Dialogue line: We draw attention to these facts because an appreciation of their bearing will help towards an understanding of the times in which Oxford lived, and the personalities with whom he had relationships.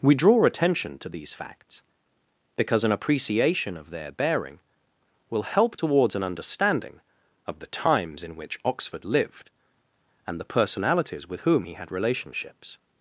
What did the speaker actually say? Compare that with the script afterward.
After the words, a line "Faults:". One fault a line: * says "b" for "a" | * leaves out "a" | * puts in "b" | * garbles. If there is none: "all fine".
We draw attention to these facts because an appreciation of their bearing will help towards an understanding of the times in which Oxford lived, and the personalities with whom he had relationships.
Faults:
all fine